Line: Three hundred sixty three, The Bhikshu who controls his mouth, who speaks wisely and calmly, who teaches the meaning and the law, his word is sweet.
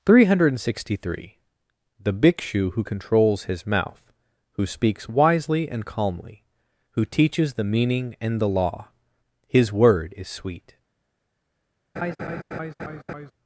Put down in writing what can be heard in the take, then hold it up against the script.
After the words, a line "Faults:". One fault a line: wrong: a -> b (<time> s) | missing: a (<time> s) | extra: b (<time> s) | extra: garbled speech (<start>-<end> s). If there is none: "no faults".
Three hundred sixty three, The Bhikshu who controls his mouth, who speaks wisely and calmly, who teaches the meaning and the law, his word is sweet.
Faults:
no faults